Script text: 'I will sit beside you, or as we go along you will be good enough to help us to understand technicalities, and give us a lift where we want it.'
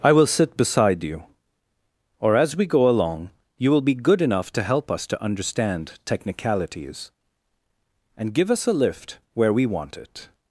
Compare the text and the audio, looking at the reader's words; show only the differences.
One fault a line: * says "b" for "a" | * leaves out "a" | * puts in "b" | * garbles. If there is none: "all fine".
all fine